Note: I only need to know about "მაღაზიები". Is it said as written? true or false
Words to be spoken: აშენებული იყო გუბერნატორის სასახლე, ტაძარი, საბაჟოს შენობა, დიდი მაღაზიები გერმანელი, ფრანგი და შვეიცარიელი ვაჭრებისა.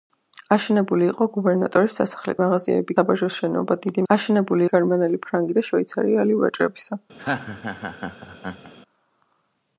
false